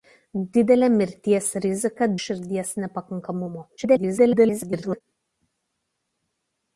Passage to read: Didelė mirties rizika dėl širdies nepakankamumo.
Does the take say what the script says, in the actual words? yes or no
no